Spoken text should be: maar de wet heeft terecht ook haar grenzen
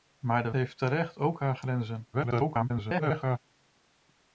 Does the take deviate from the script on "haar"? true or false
false